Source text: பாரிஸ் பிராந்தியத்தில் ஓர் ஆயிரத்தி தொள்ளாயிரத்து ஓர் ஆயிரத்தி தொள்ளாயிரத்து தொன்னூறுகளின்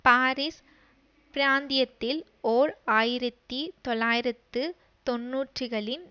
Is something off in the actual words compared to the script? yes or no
yes